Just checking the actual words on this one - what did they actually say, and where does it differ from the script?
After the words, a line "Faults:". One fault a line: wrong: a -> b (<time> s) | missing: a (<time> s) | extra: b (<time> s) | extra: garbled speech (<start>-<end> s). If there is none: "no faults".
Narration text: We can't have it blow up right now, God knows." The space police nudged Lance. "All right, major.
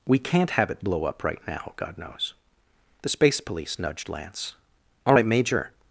We can't have it blow up right now, God knows." The space police nudged Lance. "All right, major.
Faults:
no faults